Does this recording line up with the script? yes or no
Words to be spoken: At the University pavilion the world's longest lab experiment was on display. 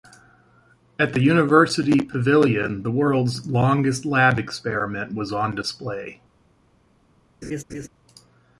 yes